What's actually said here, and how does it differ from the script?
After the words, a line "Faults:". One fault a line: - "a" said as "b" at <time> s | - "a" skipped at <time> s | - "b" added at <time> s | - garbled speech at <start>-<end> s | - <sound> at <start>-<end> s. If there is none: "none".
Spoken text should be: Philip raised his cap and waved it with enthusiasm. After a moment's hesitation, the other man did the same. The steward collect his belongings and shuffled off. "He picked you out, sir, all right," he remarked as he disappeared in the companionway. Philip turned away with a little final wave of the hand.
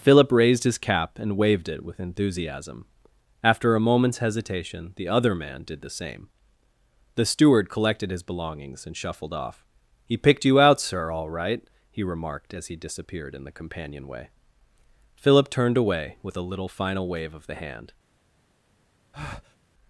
Philip raised his cap and waved it with enthusiasm. After a moment's hesitation, the other man did the same. The steward collected his belongings and shuffled off. "He picked you out, sir, all right," he remarked as he disappeared in the companionway. Philip turned away with a little final wave of the hand.
Faults:
- "collect" said as "collected" at 7.7 s
- breath at 19.1-19.6 s